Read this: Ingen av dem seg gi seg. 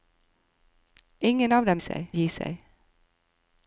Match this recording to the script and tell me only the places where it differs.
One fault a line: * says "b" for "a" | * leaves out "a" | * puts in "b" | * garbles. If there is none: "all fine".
all fine